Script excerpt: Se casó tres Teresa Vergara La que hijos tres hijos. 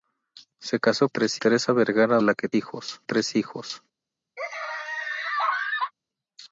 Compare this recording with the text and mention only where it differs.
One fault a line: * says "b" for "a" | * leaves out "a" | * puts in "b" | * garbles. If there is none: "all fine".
all fine